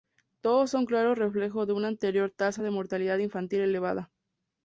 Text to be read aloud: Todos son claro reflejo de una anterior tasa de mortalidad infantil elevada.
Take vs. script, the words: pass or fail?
pass